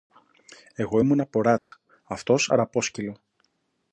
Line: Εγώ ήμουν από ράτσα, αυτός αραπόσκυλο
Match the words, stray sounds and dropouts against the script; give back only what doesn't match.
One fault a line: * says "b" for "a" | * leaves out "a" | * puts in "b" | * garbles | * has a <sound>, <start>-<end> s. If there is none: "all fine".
* has a dropout, 1.6-1.7 s